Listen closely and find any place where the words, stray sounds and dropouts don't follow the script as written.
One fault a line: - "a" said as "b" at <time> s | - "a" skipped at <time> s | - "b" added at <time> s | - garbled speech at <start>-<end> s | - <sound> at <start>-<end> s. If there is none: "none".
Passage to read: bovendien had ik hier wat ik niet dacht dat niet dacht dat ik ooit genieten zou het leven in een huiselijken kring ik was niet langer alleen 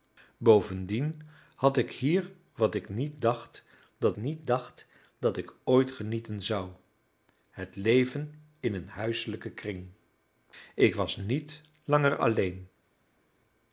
none